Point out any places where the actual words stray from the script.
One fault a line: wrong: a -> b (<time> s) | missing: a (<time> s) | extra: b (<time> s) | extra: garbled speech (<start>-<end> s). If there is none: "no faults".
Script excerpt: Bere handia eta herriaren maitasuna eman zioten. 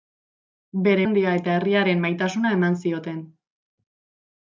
no faults